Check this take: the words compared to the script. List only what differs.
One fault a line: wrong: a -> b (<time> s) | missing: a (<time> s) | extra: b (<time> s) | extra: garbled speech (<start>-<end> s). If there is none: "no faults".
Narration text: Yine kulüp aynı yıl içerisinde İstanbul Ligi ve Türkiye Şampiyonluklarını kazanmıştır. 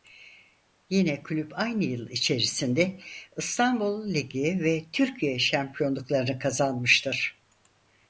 no faults